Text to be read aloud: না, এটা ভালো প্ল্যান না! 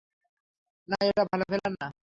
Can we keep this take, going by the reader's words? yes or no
yes